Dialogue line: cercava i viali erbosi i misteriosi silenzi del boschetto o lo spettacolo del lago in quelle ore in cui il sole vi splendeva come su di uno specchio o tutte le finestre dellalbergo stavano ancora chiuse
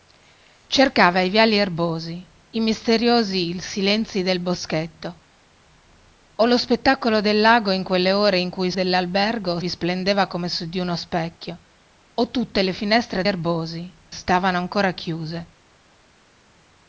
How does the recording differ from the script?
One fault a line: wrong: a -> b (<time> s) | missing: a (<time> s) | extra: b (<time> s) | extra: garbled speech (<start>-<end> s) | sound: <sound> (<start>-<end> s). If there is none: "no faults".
wrong: sole -> dellalbergo (8.7 s)
wrong: dellalbergo -> erbosi (13.2 s)